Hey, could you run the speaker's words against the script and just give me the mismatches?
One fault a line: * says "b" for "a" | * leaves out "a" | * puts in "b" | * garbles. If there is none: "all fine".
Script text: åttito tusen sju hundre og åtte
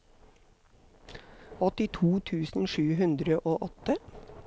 all fine